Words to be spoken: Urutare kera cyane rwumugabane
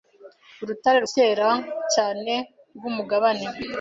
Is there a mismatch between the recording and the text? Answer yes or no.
no